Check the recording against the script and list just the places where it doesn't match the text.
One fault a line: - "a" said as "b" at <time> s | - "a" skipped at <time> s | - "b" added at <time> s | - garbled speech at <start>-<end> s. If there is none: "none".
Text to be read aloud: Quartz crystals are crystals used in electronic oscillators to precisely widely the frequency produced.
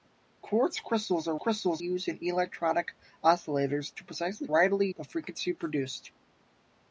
none